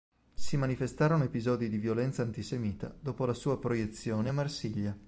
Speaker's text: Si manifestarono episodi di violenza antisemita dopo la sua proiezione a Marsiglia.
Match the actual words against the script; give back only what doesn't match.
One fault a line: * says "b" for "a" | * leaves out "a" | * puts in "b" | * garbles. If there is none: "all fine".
all fine